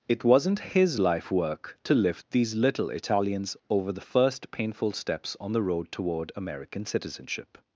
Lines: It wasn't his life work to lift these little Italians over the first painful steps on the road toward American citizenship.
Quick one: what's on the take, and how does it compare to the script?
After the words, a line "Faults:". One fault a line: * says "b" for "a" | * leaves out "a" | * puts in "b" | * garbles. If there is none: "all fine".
It wasn't his life work to lift these little Italians over the first painful steps on the road toward American citizenship.
Faults:
all fine